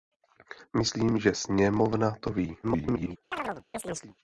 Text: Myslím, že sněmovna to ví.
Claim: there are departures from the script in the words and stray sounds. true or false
true